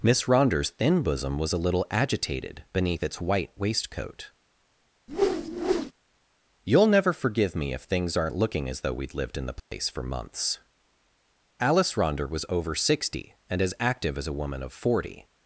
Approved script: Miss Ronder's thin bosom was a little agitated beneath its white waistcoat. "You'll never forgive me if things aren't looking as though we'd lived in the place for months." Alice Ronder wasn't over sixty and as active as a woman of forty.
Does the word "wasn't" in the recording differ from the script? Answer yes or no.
yes